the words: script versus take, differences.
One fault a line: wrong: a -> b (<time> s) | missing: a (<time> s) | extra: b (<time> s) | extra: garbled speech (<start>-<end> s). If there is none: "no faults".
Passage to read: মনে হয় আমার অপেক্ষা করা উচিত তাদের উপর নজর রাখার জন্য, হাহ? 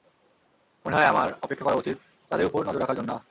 no faults